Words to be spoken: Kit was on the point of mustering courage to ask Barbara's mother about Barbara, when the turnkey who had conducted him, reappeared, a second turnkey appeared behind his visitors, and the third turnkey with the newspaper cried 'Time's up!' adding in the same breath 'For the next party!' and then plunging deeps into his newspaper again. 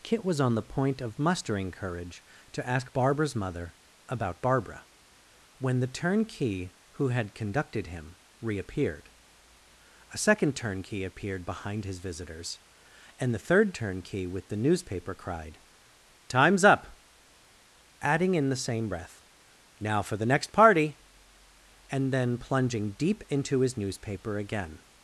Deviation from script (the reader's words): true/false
true